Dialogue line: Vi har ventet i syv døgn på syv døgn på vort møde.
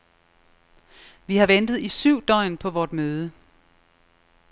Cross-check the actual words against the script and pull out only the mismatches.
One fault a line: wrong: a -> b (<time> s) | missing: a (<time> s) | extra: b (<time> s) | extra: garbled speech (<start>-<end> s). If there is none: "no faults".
missing: syv døgn på (2.7 s)